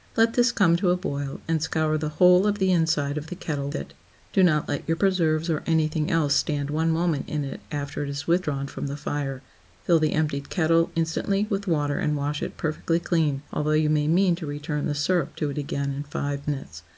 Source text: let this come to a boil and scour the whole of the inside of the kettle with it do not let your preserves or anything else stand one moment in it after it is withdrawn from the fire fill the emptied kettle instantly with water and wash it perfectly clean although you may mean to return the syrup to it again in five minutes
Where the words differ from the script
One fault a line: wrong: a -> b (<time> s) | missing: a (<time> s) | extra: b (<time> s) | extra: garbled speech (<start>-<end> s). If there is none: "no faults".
missing: with (3.7 s)